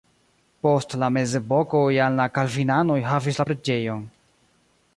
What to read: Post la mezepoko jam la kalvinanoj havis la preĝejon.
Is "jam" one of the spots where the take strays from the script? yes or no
no